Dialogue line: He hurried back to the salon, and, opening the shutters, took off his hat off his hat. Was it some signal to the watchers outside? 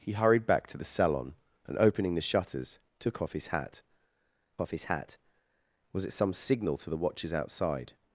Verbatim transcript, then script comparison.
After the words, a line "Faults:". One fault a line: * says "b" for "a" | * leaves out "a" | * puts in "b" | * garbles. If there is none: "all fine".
He hurried back to the salon, and, opening the shutters, took off his hat off his hat. Was it some signal to the watchers outside?
Faults:
all fine